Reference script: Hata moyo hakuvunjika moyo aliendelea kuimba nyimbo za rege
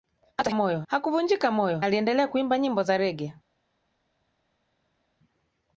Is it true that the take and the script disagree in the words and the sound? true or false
false